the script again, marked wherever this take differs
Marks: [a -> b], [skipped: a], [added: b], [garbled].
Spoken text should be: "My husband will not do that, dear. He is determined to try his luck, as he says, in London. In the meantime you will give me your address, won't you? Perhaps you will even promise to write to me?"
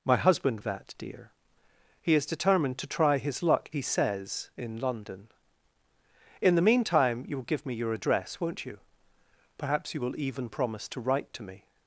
"My husband [skipped: will not do] that, dear. He is determined to try his luck, [skipped: as] he says, in London. In the meantime you will give me your address, won't you? Perhaps you will even promise to write to me?"